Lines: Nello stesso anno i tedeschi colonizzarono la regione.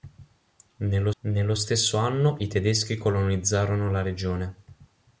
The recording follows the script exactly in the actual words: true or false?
false